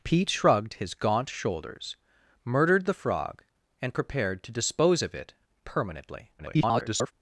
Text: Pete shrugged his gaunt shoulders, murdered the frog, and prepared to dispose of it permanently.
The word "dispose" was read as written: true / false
true